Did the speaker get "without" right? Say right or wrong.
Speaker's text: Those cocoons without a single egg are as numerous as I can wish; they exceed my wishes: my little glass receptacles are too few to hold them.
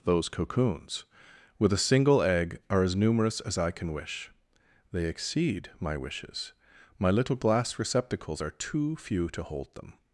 wrong